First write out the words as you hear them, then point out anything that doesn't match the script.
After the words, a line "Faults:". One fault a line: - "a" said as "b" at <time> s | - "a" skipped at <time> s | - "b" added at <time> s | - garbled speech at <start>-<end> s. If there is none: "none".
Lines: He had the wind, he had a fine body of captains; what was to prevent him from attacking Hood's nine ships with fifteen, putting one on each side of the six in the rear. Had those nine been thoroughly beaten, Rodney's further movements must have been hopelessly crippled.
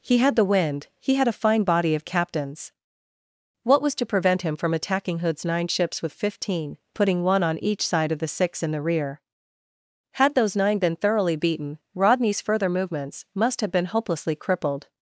He had the wind, he had a fine body of captains; what was to prevent him from attacking Hood's nine ships with fifteen, putting one on each side of the six in the rear. Had those nine been thoroughly beaten, Rodney's further movements must have been hopelessly crippled.
Faults:
none